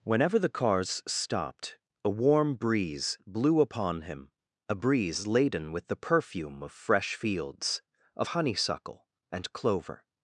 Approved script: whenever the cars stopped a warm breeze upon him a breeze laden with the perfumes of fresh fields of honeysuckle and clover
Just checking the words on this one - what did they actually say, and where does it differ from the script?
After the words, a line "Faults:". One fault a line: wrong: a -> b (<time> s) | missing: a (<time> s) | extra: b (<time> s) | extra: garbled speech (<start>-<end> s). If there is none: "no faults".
whenever the cars stopped a warm breeze blew upon him a breeze laden with the perfume of fresh fields of honeysuckle and clover
Faults:
extra: blew (3.3 s)
wrong: perfumes -> perfume (6.0 s)